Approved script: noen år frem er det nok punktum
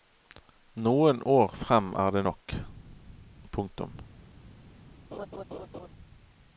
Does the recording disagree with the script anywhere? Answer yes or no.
no